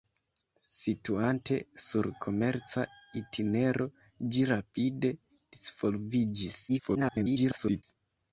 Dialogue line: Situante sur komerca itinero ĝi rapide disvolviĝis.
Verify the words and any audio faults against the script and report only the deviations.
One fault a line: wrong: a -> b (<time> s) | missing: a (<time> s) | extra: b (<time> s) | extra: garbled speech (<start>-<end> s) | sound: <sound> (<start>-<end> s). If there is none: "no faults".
extra: garbled speech (6.7-7.8 s)